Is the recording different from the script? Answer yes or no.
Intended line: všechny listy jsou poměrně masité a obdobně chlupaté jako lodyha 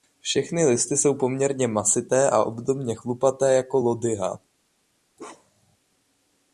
no